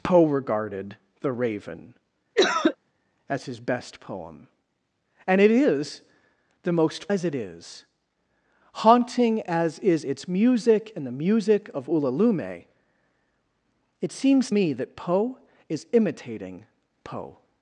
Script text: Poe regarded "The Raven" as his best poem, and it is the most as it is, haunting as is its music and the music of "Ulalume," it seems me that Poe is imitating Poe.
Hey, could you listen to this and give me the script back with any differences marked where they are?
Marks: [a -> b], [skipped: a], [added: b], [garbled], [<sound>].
Poe regarded "The Raven" [cough] as his best poem, and it is the most as it is, haunting as is its music and the music of "Ulalume," it seems me that Poe is imitating Poe.